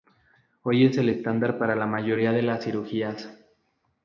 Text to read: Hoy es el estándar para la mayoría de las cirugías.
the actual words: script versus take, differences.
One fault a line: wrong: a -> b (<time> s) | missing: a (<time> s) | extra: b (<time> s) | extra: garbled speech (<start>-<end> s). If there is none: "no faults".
no faults